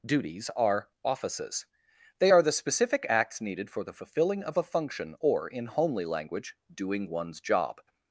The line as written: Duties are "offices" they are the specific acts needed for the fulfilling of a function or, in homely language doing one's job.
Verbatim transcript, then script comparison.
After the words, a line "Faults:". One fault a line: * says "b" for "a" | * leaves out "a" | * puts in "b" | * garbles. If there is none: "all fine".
Duties are "offices" they are the specific acts needed for the fulfilling of a function or, in homely language doing one's job.
Faults:
all fine